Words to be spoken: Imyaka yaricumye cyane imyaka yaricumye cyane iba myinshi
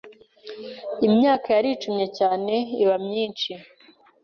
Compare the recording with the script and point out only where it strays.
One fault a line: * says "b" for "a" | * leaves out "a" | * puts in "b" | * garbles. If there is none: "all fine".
* leaves out "imyaka yaricumye cyane"